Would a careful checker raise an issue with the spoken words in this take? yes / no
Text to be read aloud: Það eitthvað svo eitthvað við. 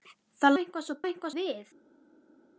no